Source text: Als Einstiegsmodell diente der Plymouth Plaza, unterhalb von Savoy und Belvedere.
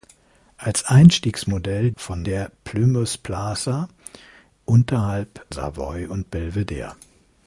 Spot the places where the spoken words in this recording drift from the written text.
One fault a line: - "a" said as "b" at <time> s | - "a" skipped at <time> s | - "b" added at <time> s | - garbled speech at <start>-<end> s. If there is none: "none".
- "diente" said as "von" at 2.0 s
- "von" skipped at 5.4 s